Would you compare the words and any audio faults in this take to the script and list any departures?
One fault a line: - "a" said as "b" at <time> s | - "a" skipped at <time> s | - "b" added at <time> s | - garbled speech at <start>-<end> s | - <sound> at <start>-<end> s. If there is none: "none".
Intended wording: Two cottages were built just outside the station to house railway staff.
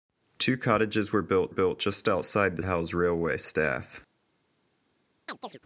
- "built" added at 1.5 s
- "station to" skipped at 2.6 s
- chirp at 5.3-5.6 s